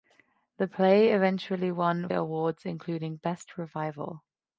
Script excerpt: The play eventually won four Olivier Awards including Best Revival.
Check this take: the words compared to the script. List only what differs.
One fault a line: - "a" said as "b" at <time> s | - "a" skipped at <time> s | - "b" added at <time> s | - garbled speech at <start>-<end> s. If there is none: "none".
- "four Olivier" skipped at 2.1 s